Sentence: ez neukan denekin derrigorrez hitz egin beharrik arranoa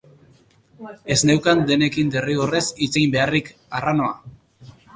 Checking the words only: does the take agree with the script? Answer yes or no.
yes